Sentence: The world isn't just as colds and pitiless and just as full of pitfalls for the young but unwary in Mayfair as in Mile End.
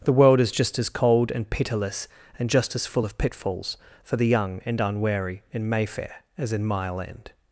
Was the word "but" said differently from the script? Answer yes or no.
yes